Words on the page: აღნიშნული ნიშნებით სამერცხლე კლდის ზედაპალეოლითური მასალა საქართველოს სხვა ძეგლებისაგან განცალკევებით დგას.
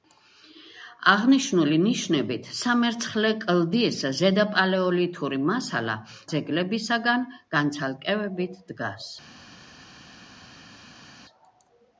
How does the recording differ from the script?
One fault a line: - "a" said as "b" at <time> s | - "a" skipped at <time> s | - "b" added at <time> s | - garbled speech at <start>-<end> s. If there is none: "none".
- "საქართველოს სხვა" skipped at 6.0 s